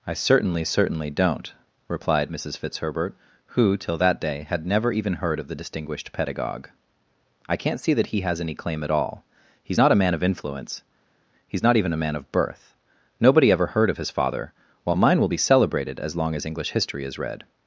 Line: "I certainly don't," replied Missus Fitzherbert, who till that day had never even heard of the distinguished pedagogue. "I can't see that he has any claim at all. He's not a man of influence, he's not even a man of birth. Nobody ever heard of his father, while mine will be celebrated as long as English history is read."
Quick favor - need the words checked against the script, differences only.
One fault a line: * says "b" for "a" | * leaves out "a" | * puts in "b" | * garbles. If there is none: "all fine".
* puts in "certainly"